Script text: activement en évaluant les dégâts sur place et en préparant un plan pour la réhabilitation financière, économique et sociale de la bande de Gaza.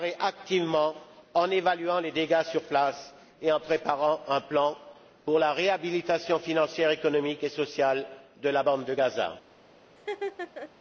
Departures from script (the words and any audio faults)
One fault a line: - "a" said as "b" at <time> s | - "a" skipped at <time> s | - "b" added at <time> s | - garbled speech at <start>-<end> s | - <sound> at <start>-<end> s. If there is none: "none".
- laugh at 10.0-10.7 s